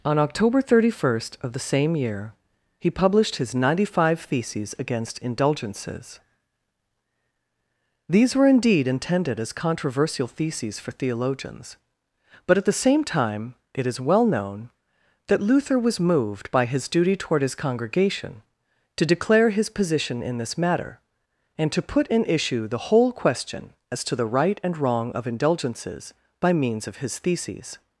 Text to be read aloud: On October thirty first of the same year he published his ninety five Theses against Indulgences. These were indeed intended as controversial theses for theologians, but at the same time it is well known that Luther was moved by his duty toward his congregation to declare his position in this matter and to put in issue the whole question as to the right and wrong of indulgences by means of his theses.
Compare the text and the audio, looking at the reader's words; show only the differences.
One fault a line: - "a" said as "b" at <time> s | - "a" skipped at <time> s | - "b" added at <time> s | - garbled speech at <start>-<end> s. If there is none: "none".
none